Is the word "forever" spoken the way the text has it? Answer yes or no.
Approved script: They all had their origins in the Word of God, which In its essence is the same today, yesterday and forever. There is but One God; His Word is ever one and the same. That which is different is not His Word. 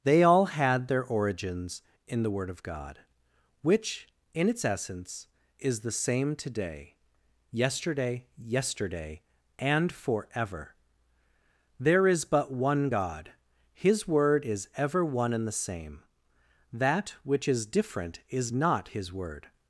yes